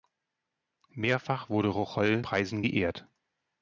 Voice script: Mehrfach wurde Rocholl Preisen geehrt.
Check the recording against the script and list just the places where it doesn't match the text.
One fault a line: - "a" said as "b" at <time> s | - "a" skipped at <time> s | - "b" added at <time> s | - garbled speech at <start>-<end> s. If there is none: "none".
none